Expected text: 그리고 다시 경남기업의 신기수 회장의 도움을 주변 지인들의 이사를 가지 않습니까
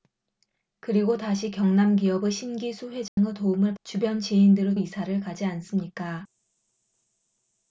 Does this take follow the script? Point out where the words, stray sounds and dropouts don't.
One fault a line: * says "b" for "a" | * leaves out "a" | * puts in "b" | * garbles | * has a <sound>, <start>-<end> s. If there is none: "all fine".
* has a dropout, 3.1-3.2 s